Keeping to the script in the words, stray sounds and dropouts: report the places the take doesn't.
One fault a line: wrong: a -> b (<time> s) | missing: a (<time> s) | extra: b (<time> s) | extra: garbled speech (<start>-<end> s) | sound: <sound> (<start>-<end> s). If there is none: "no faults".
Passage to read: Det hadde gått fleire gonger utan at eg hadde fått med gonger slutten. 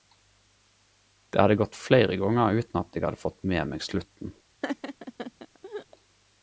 wrong: gonger -> meg (3.7 s)
sound: laugh (4.6-5.9 s)